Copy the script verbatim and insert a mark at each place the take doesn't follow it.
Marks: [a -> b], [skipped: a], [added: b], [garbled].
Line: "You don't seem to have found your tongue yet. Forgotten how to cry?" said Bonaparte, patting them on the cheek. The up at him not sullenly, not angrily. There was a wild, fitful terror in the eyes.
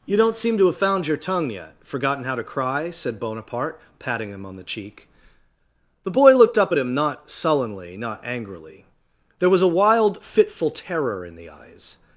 "You don't seem to have found your tongue yet. Forgotten how to cry?" said Bonaparte, patting [them -> him] on the cheek. The [added: boy looked] up at him not sullenly, not angrily. There was a wild, fitful terror in the eyes.